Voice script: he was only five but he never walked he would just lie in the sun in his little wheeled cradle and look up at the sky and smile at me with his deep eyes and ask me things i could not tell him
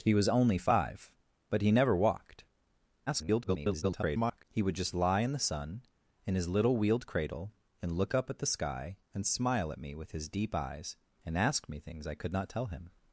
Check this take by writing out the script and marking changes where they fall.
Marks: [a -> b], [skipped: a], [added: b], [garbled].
he was only five but he never walked [garbled] he would just lie in the sun in his little wheeled cradle and look up at the sky and smile at me with his deep eyes and ask me things i could not tell him